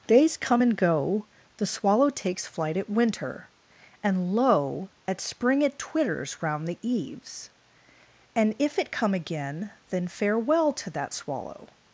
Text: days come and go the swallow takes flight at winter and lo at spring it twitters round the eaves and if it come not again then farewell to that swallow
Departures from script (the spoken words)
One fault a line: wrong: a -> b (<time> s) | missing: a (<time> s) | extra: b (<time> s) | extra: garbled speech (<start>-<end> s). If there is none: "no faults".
missing: not (9.1 s)